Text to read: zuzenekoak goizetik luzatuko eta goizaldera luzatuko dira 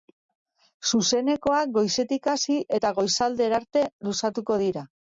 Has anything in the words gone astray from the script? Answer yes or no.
yes